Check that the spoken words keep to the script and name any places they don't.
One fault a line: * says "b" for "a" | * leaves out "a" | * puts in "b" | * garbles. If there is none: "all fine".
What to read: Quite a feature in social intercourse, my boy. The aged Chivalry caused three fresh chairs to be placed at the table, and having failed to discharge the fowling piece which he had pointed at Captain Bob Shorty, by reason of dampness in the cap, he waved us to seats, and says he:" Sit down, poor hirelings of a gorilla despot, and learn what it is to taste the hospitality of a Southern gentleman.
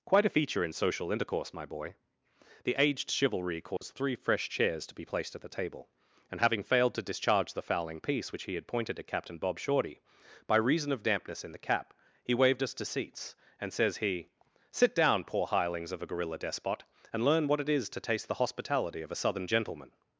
all fine